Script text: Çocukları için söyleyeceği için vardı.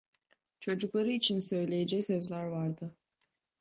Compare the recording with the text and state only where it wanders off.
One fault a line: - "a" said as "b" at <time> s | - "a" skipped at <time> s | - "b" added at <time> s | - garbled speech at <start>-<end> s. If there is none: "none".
- "için" said as "sözler" at 2.0 s